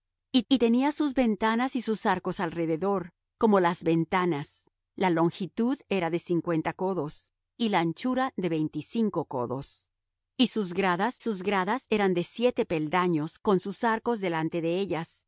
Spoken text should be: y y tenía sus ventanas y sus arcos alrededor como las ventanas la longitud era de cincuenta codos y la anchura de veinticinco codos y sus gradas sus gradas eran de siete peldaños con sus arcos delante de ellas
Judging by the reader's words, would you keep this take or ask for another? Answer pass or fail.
pass